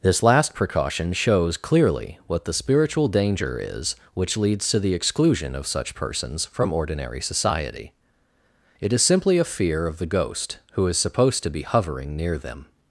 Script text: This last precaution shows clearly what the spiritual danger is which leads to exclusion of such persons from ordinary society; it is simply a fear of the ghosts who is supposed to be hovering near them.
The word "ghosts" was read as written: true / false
false